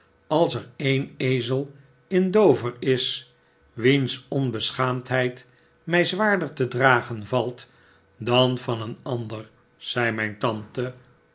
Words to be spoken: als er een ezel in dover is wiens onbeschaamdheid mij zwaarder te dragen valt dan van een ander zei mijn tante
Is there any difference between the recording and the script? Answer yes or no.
no